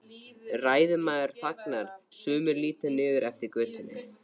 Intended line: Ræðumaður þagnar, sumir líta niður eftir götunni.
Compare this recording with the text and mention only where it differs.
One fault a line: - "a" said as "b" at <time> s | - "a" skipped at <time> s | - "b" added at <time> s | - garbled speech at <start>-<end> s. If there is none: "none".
none